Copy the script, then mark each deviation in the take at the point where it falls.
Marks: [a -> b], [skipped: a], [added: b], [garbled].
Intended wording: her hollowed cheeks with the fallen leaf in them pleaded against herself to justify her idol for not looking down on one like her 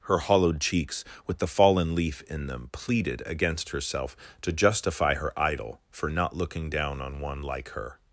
her hollowed cheeks with the fallen leaf in them pleaded against herself to justify her idol for not looking down on one like her